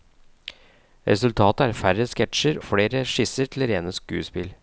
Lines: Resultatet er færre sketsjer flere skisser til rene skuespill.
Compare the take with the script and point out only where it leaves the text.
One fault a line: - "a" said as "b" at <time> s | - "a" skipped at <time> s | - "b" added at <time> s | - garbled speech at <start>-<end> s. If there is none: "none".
none